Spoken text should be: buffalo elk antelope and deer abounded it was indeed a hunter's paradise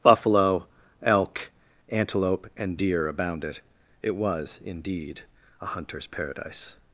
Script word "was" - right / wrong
right